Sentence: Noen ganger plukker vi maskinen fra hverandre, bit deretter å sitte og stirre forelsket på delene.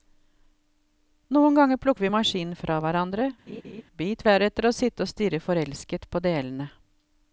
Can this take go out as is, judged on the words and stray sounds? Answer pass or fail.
fail